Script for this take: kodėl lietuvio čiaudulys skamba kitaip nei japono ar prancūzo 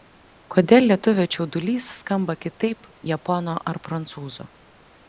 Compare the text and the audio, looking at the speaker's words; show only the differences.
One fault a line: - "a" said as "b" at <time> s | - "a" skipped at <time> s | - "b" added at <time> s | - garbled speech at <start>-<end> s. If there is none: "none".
- "nei" skipped at 2.9 s